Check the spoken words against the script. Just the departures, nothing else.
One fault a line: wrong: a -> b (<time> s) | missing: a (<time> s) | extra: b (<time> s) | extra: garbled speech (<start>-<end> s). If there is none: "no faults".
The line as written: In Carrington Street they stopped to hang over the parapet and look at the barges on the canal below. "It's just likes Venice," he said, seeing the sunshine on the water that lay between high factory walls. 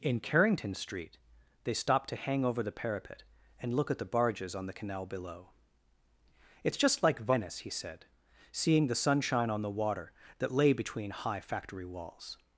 wrong: likes -> like (7.0 s)